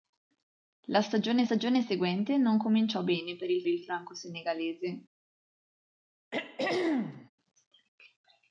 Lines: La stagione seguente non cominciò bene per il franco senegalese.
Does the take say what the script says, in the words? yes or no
no